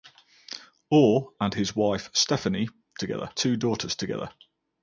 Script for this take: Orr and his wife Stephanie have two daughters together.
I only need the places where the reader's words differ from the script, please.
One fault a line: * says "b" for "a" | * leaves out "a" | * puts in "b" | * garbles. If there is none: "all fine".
* says "together" for "have"